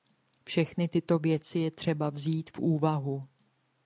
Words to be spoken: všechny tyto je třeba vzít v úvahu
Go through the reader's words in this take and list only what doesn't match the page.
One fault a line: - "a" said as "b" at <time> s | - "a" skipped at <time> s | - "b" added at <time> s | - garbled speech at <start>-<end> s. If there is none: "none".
- "věci" added at 1.2 s